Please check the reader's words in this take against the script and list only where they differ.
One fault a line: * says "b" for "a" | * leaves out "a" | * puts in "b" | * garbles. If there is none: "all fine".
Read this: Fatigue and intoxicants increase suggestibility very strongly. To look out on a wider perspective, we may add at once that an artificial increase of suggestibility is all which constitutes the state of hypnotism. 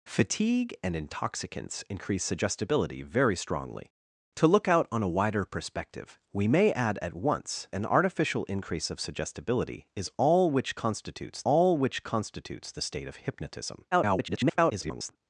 * leaves out "that"
* puts in "all which constitutes"
* garbles